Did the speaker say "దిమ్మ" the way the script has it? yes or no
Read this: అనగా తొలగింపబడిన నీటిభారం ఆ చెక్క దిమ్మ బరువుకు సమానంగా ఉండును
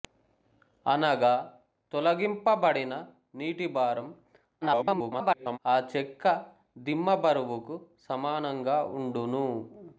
yes